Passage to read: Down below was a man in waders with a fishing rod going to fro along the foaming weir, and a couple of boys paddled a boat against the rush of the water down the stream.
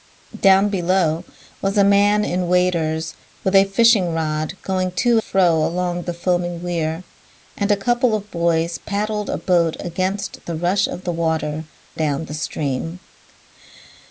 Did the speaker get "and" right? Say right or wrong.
right